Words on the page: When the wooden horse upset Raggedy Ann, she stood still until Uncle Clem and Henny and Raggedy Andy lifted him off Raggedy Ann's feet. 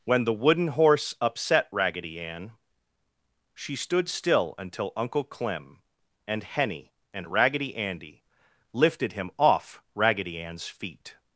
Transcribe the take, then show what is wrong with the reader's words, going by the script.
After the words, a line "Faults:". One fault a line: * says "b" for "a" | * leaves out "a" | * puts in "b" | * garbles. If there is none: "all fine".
When the wooden horse upset Raggedy Ann, she stood still until Uncle Clem and Henny and Raggedy Andy lifted him off Raggedy Ann's feet.
Faults:
all fine